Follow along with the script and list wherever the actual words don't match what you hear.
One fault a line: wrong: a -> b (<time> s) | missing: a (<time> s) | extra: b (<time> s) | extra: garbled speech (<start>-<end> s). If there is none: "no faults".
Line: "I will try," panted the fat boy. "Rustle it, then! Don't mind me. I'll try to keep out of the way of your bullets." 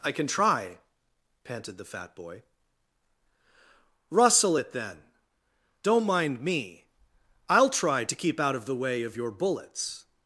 wrong: will -> can (0.1 s)